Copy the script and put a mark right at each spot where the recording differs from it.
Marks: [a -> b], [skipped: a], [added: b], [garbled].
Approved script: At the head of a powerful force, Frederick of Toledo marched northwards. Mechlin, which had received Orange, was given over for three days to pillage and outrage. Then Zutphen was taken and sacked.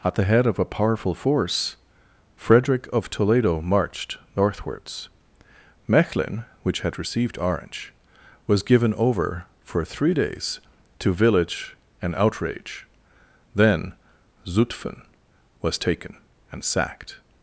At the head of a powerful force, Frederick of Toledo marched northwards. Mechlin, which had received Orange, was given over for three days to [pillage -> village] and outrage. Then Zutphen was taken and sacked.